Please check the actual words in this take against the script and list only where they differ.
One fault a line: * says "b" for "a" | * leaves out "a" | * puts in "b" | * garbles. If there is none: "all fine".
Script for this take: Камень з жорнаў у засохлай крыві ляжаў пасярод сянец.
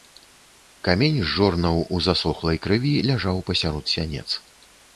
all fine